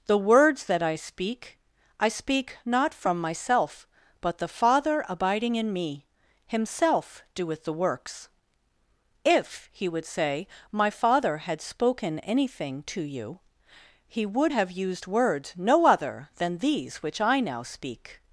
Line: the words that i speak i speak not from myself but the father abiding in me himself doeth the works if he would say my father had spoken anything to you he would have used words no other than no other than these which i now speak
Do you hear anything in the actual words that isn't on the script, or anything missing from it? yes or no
yes